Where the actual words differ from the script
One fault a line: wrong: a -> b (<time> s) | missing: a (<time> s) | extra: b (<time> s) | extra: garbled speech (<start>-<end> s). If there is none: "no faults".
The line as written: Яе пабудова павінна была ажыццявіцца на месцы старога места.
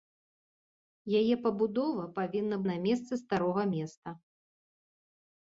missing: была ажыццявіцца (2.6 s)